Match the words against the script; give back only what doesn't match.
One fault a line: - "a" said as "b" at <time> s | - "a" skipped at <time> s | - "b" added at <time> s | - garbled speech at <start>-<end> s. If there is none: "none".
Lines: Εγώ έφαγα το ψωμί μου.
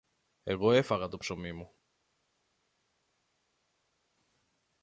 none